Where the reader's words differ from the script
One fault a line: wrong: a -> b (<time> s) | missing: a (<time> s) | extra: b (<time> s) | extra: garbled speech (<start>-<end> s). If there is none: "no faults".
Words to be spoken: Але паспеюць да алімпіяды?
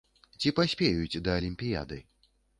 wrong: Але -> Ці (0.4 s)